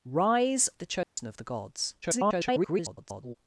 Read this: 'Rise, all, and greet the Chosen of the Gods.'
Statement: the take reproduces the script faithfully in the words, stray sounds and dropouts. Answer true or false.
false